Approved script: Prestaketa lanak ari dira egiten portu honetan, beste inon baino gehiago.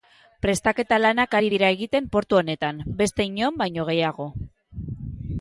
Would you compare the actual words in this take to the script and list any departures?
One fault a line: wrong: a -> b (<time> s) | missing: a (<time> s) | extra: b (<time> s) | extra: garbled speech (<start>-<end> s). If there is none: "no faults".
no faults